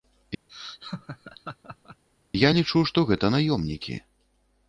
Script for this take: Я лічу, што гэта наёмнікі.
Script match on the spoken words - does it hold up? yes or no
yes